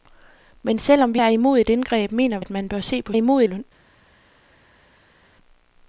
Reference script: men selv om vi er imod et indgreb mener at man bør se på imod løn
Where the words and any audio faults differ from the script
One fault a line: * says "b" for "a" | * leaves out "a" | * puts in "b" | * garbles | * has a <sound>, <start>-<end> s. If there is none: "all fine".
all fine